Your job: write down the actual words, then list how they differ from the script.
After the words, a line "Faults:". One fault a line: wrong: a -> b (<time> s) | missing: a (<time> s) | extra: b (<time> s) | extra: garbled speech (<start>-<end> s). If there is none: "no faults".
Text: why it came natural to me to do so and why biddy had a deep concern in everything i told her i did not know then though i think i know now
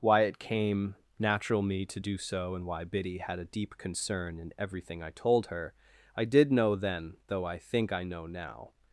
why it came natural me to do so and why biddy had a deep concern in everything i told her i did know then though i think i know now
Faults:
missing: to (1.6 s)
missing: not (6.5 s)